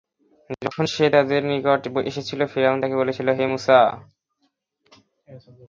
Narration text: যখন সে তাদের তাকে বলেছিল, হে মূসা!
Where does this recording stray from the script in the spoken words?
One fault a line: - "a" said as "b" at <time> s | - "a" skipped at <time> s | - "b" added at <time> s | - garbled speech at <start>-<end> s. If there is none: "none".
- "নিকট এসেছিল ফিরআউন" added at 1.5 s